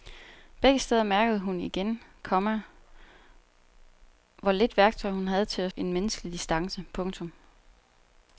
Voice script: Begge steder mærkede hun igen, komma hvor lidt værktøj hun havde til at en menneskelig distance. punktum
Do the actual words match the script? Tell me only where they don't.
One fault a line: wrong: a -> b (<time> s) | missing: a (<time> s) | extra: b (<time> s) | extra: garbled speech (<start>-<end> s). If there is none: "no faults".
no faults